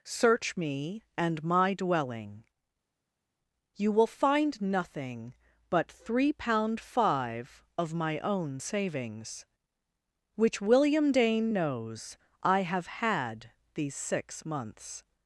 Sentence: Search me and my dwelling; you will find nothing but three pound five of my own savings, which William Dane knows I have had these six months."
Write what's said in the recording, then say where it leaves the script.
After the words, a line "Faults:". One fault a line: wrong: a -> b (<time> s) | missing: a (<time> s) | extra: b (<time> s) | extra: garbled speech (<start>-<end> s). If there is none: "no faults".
Search me and my dwelling; you will find nothing but three pound five of my own savings, which William Dane knows I have had these six months."
Faults:
no faults